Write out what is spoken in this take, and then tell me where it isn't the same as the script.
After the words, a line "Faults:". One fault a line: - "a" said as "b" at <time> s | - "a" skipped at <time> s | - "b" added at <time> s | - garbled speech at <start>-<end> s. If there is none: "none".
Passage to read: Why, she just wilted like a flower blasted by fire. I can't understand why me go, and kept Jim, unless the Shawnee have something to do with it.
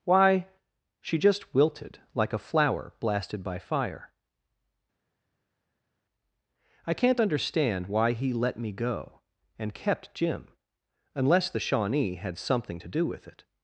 Why, she just wilted like a flower blasted by fire. I can't understand why he let me go, and kept Jim, unless the Shawnee had something to do with it.
Faults:
- "he let" added at 8.1 s
- "have" said as "had" at 12.1 s